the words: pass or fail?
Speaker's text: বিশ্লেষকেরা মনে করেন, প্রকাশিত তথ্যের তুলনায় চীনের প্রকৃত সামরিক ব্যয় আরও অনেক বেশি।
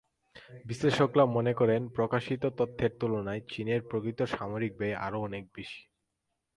pass